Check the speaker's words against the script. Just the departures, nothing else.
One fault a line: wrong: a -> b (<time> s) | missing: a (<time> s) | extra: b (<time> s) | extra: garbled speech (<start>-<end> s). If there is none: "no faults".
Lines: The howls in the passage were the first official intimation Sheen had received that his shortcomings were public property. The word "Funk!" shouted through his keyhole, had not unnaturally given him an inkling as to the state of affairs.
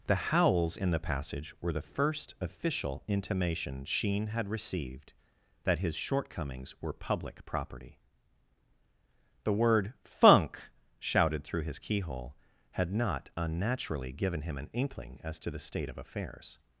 no faults